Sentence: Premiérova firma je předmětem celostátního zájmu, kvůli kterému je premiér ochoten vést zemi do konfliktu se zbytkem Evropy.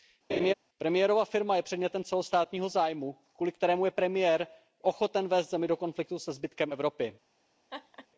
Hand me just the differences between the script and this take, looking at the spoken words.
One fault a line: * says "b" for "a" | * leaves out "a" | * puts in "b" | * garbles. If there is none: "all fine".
all fine